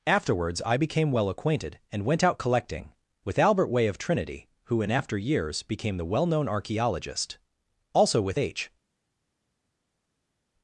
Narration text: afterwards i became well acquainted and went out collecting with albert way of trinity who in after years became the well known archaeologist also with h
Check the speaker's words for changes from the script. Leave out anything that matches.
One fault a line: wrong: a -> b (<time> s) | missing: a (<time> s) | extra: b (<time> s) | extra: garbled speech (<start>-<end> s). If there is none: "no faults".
no faults